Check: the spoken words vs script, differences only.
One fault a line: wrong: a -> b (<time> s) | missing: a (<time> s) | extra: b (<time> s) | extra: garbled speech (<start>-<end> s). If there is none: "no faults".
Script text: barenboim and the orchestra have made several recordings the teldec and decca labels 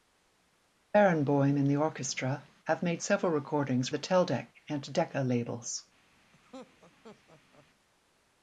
no faults